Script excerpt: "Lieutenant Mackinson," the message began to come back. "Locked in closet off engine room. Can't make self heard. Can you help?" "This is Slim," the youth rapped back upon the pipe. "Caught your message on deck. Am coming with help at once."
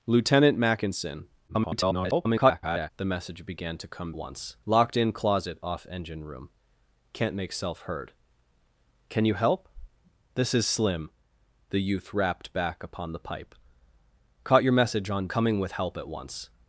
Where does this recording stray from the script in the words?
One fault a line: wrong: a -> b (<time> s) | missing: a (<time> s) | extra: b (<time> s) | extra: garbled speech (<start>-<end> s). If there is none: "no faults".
extra: garbled speech (1.5-2.9 s)
wrong: back -> once (4.1 s)
missing: deck Am (15.3 s)